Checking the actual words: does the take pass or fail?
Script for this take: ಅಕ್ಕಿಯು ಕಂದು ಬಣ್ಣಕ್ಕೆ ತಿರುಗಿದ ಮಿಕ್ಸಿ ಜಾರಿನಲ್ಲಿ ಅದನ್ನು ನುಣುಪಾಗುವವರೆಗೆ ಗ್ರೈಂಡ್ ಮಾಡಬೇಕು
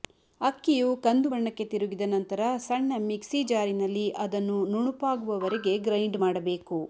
fail